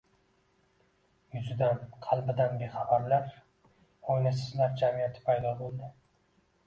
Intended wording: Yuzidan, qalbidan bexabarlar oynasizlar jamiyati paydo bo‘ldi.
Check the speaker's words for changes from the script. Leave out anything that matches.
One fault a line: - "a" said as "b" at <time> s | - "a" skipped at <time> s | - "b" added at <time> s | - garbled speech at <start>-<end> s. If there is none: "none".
none